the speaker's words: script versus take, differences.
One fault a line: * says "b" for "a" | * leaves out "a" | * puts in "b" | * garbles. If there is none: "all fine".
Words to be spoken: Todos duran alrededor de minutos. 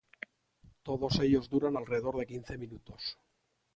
* puts in "ellos"
* puts in "quince"